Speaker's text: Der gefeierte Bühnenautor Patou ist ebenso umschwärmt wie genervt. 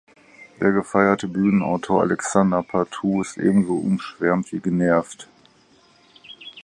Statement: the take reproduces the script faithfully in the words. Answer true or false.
false